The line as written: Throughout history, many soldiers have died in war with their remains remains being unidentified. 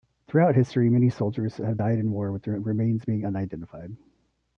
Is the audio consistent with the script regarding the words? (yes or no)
no